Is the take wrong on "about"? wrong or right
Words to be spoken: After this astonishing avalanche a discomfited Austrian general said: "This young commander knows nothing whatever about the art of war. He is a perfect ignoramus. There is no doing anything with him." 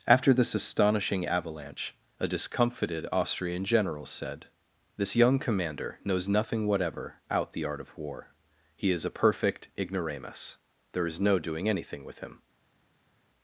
wrong